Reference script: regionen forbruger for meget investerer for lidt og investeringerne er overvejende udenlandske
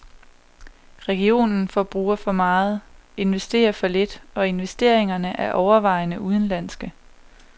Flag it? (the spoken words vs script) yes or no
no